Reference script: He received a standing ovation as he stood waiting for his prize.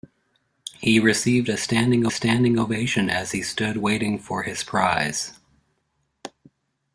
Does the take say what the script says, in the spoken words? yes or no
no